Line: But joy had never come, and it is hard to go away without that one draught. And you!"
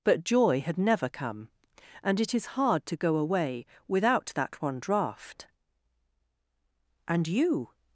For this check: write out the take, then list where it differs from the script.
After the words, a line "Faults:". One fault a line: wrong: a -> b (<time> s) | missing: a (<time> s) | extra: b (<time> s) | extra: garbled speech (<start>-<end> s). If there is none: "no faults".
But joy had never come, and it is hard to go away without that one draught. And you!"
Faults:
no faults